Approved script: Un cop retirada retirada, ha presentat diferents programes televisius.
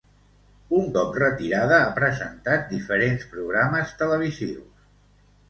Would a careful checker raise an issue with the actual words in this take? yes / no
yes